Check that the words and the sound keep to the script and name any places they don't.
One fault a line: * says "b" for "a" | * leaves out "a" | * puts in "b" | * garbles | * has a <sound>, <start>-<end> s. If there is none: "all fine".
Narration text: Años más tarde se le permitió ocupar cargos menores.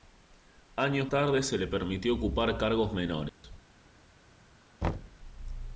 * leaves out "más"
* has a dropout, 3.3-3.4 s
* has a thud, 4.8-5.2 s